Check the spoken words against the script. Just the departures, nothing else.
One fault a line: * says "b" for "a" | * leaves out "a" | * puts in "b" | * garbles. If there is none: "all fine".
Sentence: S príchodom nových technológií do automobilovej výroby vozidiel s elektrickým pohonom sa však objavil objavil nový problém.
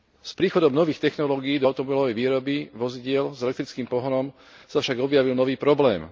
* leaves out "objavil"